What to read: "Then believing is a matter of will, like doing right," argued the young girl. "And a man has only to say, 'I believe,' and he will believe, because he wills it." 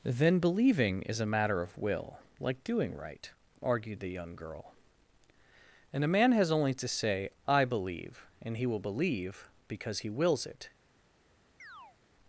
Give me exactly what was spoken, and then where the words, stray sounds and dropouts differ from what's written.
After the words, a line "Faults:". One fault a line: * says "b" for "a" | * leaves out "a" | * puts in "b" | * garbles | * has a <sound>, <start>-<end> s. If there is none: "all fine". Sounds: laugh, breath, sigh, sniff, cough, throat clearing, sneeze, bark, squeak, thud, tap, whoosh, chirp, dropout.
"Then believing is a matter of will, like doing right," argued the young girl. "And a man has only to say, 'I believe,' and he will believe, because he wills it."
Faults:
* has a chirp, 11.6-12.0 s